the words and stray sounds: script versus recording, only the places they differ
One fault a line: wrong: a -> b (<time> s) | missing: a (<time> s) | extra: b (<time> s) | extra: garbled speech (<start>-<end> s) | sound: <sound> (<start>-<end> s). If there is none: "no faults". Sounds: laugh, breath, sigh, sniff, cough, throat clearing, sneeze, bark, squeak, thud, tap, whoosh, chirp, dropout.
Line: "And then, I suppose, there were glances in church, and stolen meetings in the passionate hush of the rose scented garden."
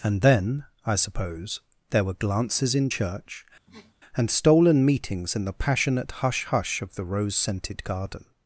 sound: sniff (3.7-3.9 s)
extra: hush (6.5 s)